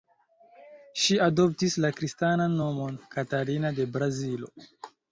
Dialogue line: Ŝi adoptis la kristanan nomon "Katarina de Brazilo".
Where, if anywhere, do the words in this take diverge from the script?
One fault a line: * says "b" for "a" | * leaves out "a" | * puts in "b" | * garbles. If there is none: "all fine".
all fine